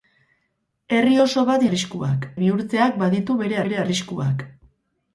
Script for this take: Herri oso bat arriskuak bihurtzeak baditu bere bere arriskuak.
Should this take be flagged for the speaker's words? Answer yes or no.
no